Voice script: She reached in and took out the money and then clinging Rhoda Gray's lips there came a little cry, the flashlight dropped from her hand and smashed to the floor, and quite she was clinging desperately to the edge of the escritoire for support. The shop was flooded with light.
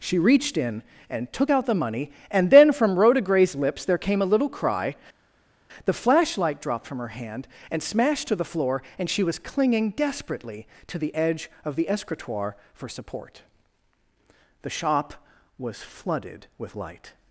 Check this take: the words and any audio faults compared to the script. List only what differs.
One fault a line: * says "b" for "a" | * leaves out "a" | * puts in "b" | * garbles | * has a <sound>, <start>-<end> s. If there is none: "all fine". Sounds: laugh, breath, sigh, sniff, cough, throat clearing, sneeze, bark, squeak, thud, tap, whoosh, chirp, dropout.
* says "from" for "clinging"
* leaves out "quite"